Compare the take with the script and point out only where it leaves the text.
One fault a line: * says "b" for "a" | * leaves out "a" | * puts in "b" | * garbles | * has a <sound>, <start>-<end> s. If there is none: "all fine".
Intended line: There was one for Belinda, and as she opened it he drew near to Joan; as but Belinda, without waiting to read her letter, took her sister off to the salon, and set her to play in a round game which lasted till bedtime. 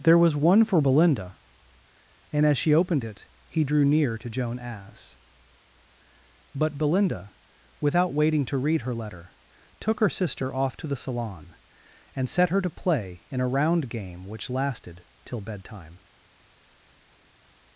all fine